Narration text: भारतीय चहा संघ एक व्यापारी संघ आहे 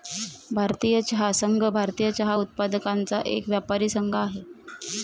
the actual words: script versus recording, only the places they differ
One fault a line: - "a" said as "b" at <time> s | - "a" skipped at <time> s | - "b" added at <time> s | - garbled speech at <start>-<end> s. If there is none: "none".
- "भारतीय चहा उत्पादकांचा" added at 1.6 s